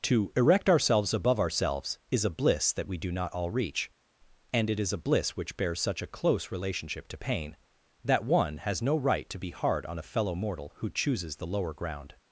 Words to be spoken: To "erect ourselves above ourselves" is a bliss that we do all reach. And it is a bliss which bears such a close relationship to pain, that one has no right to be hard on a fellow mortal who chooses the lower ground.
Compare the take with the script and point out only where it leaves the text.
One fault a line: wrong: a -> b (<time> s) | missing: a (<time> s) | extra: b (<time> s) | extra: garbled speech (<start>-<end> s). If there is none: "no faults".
extra: not (3.1 s)